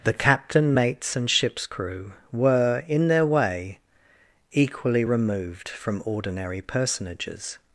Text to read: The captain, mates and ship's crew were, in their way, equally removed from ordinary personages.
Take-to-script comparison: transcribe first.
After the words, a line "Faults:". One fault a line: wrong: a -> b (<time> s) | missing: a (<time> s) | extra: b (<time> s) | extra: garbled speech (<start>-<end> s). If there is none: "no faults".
The captain, mates and ship's crew were, in their way, equally removed from ordinary personages.
Faults:
no faults